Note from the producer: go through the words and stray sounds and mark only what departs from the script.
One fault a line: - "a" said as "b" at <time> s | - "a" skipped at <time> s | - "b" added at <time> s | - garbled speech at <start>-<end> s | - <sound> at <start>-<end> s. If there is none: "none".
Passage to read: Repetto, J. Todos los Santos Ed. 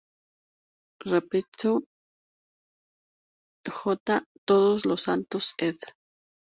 none